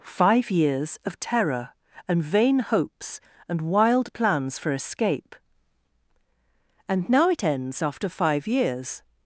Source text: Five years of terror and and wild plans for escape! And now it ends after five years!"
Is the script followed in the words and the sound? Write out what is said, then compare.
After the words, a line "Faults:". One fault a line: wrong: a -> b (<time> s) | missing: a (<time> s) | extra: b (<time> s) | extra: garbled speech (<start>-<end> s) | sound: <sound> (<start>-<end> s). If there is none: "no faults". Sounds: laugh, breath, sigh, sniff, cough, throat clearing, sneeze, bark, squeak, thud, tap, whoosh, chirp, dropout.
Five years of terror and vain hopes and wild plans for escape! And now it ends after five years!"
Faults:
extra: vain hopes (2.2 s)